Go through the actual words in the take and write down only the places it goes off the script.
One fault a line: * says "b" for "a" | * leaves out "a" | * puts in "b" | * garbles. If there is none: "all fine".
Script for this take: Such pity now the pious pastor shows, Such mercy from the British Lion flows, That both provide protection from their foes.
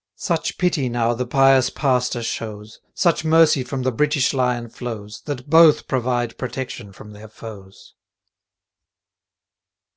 all fine